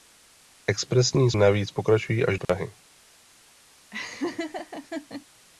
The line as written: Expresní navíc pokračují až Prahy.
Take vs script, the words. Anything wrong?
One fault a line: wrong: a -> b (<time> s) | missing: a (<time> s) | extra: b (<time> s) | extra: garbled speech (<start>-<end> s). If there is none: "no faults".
no faults